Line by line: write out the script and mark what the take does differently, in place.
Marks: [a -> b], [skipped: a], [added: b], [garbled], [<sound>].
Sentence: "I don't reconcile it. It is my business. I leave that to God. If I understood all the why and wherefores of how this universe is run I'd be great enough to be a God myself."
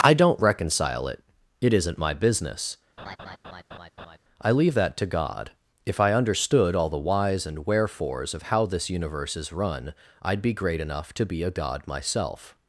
"I don't reconcile it. It [is -> isn't] my business. [laugh] I leave that to God. If I understood all the [why -> whys] and wherefores of how this universe is run I'd be great enough to be a God myself."